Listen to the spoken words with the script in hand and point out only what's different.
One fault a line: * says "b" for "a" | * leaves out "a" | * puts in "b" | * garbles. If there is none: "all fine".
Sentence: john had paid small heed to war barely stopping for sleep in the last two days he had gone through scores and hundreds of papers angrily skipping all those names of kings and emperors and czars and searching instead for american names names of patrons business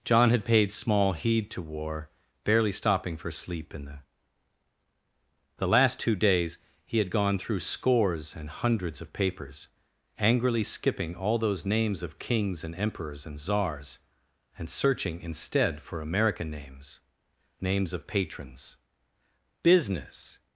* puts in "the"